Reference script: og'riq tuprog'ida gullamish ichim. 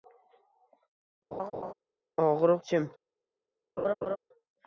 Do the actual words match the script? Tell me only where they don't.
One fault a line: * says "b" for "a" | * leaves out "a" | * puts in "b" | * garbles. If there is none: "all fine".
* leaves out "tuprog'ida gullamish"